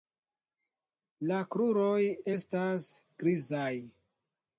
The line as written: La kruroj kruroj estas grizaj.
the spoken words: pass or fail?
fail